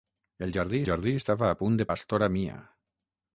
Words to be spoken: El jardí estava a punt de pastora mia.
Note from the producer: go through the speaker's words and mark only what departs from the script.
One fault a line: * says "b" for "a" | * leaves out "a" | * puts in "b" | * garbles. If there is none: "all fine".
* puts in "jardí"